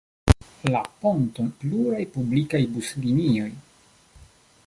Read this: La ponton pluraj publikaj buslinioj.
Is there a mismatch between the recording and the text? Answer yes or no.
no